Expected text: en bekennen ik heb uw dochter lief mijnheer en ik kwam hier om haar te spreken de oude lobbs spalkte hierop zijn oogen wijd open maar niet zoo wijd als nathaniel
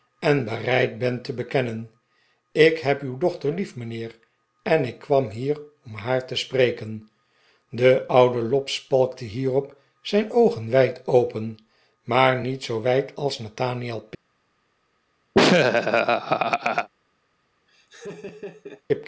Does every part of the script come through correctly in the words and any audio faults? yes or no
no